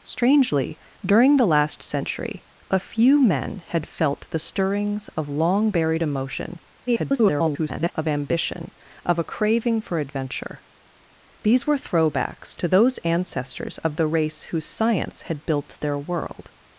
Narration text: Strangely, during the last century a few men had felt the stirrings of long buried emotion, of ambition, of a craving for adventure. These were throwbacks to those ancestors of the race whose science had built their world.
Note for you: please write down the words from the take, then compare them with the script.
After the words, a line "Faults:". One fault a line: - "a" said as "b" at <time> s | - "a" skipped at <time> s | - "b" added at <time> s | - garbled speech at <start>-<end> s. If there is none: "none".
Strangely, during the last century a few men had felt the stirrings of long buried emotion, [garbled] of ambition, of a craving for adventure. These were throwbacks to those ancestors of the race whose science had built their world.
Faults:
- garbled speech at 6.9-7.9 s